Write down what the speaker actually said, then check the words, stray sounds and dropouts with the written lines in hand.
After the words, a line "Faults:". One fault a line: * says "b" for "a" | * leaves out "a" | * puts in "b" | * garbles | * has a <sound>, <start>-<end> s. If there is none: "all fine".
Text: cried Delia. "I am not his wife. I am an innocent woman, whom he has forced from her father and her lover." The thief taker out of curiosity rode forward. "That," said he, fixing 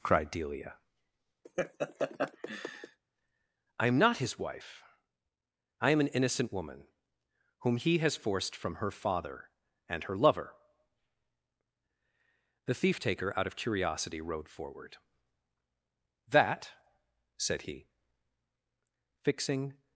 cried Delia. "I am not his wife. I am an innocent woman, whom he has forced from her father and her lover." The thief taker out of curiosity rode forward. "That," said he, fixing
Faults:
* has a laugh, 1.4-3.0 s